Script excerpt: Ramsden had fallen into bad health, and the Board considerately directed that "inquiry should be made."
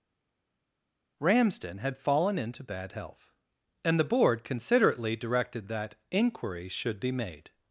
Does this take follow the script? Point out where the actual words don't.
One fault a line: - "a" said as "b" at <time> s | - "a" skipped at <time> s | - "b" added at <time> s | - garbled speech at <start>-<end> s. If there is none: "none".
none